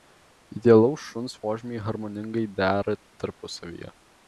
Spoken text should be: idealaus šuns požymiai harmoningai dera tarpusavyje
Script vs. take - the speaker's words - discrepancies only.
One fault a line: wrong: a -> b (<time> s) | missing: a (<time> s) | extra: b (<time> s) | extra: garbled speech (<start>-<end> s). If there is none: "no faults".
no faults